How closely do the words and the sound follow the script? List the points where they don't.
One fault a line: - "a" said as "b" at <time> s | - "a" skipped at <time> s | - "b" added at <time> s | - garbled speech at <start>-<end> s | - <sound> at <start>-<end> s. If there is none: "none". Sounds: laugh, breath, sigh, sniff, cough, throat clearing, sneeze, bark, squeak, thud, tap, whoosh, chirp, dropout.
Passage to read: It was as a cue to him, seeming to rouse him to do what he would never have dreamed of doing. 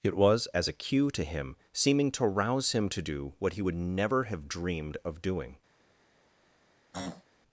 - throat clearing at 6.9-7.2 s